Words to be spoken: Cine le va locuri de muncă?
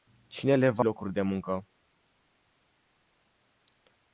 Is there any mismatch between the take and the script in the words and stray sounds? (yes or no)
no